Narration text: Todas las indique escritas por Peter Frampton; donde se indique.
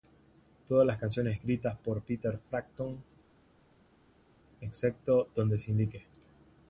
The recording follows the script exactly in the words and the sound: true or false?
false